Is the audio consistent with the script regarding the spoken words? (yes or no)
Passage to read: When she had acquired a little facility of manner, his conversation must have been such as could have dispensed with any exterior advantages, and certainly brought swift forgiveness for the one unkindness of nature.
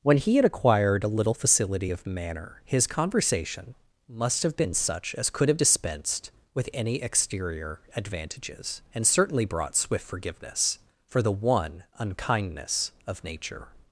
no